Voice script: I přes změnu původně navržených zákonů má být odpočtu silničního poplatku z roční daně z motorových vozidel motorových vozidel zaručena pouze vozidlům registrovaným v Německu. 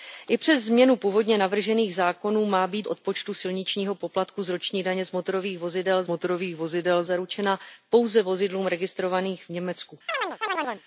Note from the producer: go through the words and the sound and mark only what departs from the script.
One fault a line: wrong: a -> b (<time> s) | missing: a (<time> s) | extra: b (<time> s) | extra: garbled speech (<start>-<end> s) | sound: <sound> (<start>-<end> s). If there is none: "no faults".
sound: chirp (10.1-10.8 s)